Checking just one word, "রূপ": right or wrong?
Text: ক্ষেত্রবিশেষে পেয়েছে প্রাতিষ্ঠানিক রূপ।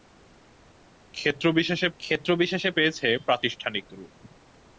right